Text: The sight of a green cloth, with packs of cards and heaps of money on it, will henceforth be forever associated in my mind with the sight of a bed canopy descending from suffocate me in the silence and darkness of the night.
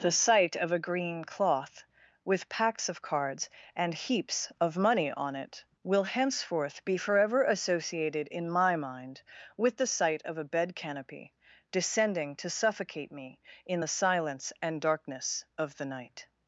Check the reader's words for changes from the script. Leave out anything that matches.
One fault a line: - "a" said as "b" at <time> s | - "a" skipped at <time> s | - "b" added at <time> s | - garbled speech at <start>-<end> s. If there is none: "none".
- "from" said as "to" at 12.4 s